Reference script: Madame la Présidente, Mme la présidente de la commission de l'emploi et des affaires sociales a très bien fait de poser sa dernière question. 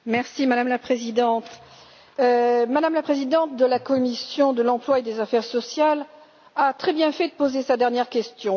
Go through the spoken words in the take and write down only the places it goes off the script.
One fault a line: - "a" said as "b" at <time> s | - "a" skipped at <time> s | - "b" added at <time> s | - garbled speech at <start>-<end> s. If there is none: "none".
none